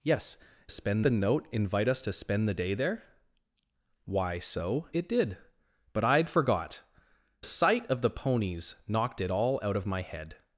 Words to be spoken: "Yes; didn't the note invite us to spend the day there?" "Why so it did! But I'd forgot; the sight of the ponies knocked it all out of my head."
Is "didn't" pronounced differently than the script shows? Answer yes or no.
yes